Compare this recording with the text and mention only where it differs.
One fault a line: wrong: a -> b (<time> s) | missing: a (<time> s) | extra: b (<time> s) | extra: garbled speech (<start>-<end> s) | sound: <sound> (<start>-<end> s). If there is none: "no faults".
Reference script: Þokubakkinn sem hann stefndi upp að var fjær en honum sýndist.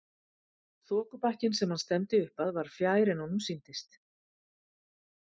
no faults